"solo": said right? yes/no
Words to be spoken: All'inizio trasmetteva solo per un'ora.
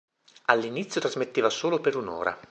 yes